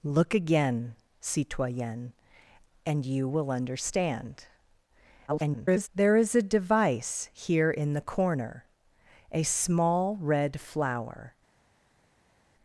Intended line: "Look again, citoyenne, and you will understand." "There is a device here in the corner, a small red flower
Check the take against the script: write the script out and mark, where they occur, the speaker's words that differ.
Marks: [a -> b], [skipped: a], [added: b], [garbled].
"Look again, citoyenne, and you will understand." [garbled] "There is a device here in the corner, a small red flower